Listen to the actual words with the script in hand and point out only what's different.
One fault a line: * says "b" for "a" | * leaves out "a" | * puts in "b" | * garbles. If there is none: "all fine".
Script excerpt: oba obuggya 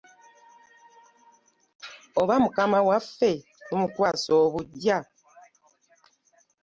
* puts in "mukama waffe tumukwasa"